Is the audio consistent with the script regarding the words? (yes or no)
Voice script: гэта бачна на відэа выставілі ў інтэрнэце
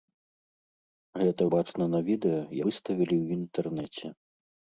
yes